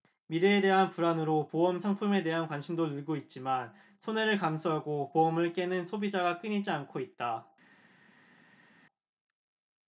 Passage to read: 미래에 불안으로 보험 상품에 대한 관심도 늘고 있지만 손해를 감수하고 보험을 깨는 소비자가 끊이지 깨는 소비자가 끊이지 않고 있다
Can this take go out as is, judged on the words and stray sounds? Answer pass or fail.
fail